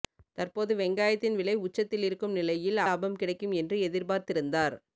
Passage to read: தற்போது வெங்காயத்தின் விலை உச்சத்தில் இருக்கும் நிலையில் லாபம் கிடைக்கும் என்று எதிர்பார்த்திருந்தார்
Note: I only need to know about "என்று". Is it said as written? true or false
true